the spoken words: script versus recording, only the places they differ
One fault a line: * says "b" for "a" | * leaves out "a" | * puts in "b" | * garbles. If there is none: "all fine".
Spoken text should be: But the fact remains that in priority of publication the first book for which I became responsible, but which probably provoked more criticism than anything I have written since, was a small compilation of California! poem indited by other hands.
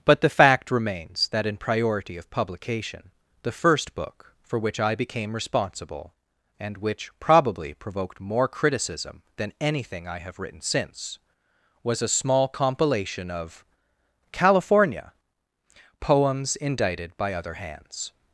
* says "and" for "but"
* says "poems" for "poem"